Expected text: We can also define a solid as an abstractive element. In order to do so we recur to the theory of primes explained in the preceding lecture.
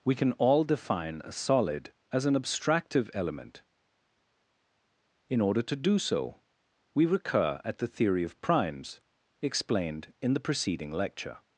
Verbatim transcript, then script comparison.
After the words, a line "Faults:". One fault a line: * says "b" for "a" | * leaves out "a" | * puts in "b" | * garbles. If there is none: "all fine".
We can all define a solid as an abstractive element. In order to do so we recur at the theory of primes explained in the preceding lecture.
Faults:
* says "all" for "also"
* says "at" for "to"